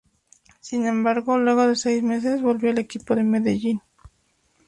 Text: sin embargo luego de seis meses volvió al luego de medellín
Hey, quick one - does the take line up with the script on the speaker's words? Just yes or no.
no